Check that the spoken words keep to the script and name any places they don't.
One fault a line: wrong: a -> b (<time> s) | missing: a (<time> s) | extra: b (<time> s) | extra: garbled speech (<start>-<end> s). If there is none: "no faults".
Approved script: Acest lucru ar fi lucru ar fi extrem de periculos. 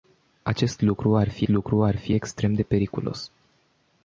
no faults